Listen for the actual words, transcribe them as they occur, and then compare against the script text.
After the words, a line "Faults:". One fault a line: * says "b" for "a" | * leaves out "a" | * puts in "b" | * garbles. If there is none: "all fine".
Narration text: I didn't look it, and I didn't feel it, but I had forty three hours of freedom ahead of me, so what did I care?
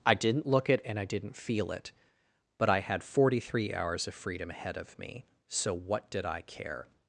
I didn't look it, and I didn't feel it, but I had forty three hours of freedom ahead of me, so what did I care?
Faults:
all fine